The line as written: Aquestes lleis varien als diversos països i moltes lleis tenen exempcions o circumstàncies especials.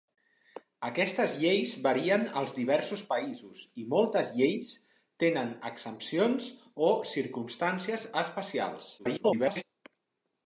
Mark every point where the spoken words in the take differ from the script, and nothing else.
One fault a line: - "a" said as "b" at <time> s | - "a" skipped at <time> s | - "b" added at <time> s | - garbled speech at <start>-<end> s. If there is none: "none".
- garbled speech at 9.0-9.6 s